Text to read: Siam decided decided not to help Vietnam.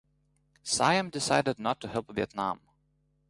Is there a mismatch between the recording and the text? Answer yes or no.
yes